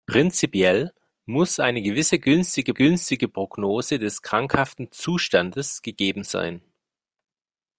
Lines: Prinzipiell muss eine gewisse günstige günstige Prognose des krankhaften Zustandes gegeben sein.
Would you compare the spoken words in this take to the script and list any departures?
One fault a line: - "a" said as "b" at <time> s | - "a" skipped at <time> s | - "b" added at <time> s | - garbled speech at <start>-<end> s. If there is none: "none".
none